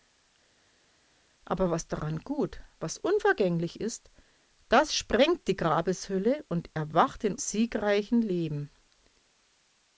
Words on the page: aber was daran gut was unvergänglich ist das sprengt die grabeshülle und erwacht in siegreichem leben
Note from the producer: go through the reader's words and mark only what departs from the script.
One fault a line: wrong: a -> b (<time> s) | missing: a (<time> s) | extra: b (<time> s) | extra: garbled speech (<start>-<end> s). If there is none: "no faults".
no faults